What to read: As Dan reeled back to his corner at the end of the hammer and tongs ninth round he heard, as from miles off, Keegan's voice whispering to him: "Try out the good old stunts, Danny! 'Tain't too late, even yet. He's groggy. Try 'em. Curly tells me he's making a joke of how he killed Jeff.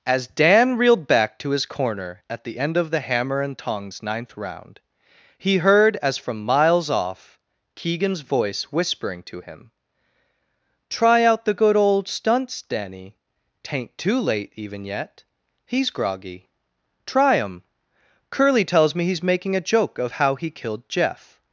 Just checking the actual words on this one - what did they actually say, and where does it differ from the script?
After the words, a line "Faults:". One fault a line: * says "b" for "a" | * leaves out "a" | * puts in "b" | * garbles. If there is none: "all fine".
As Dan reeled back to his corner at the end of the hammer and tongs ninth round he heard, as from miles off, Keegan's voice whispering to him: "Try out the good old stunts, Danny! 'Tain't too late, even yet. He's groggy. Try 'em. Curly tells me he's making a joke of how he killed Jeff.
Faults:
all fine